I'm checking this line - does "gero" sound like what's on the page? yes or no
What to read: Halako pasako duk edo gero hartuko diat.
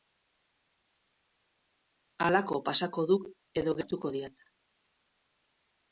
no